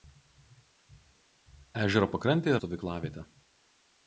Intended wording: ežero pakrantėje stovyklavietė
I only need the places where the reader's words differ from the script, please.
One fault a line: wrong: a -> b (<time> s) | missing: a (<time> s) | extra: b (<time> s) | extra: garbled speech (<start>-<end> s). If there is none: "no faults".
no faults